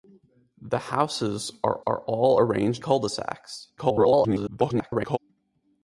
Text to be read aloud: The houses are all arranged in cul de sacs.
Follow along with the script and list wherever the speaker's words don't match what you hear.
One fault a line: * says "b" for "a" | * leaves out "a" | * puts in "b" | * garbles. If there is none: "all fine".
* puts in "are"
* leaves out "in"
* garbles